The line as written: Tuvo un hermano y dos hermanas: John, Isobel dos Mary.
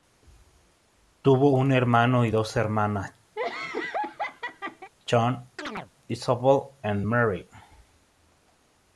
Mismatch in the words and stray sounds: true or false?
true